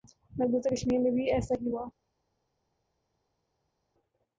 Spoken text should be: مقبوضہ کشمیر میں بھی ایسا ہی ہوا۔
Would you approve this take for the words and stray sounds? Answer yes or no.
yes